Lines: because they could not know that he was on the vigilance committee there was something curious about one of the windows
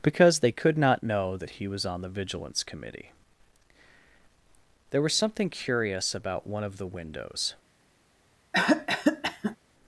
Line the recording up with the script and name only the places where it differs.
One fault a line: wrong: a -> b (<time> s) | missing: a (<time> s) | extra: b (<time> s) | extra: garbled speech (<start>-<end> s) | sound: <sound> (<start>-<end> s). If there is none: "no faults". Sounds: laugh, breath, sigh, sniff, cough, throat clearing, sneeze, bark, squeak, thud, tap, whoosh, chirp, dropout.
sound: cough (8.5-9.6 s)